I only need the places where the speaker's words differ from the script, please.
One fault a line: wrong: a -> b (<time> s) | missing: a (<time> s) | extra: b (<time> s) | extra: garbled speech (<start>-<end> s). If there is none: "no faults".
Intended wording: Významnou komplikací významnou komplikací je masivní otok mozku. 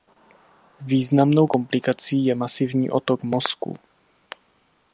missing: významnou komplikací (2.2 s)